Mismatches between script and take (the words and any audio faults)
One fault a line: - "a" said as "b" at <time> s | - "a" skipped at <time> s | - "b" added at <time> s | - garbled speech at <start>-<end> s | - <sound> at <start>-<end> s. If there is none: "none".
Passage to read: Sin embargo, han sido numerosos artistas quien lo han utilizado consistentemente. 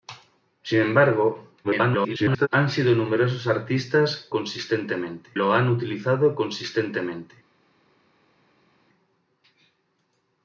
- garbled speech at 1.6-2.5 s
- "quien" said as "consistentemente" at 4.3 s